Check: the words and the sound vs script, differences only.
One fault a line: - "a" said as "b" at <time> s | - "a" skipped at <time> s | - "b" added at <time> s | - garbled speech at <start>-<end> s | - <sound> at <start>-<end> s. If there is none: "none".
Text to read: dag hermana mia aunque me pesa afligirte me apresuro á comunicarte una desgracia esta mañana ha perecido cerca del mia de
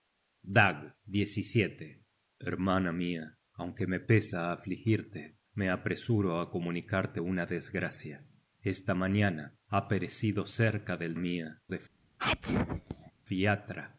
- sneeze at 12.2-13.1 s